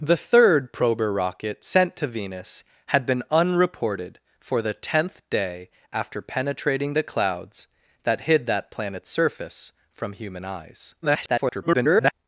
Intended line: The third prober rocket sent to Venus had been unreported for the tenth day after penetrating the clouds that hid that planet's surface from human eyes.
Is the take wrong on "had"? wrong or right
right